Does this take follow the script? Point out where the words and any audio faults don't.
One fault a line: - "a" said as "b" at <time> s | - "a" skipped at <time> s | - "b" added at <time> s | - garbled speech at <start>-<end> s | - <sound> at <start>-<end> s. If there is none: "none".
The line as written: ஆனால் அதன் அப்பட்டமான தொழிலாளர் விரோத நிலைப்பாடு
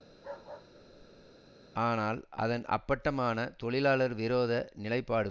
- bark at 0.1-1.5 s